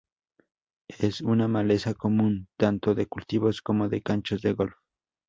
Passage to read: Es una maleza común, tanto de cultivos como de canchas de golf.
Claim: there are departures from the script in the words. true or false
false